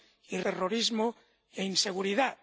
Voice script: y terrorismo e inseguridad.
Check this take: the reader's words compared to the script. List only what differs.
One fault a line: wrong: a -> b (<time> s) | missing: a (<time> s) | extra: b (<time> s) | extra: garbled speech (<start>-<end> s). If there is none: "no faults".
no faults